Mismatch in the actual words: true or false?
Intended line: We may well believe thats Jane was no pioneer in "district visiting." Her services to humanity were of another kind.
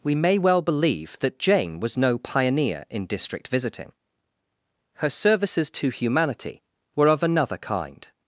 true